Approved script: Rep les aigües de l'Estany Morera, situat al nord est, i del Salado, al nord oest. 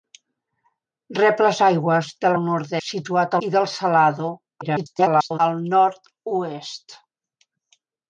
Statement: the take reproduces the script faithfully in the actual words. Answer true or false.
false